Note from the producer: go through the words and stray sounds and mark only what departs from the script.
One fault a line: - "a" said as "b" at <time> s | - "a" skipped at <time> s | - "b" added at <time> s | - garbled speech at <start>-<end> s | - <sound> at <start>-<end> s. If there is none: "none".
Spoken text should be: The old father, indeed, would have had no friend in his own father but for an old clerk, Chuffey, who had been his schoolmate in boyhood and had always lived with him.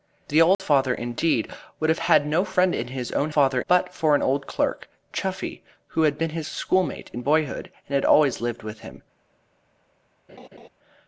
- dropout at 0.5-0.6 s
- laugh at 10.3-10.7 s